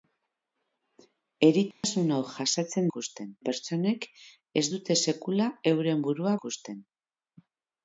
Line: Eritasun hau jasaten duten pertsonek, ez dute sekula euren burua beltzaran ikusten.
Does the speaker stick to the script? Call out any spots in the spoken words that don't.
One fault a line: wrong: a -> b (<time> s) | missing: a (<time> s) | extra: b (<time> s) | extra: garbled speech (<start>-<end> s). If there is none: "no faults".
wrong: duten -> ikusten (2.9 s)
missing: beltzaran (6.3 s)